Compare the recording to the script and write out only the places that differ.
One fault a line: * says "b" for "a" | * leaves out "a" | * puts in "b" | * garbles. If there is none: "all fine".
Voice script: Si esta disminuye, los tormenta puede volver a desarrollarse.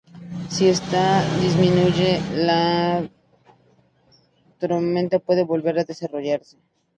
* says "la" for "los"